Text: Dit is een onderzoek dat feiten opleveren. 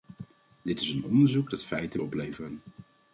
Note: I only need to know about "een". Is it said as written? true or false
true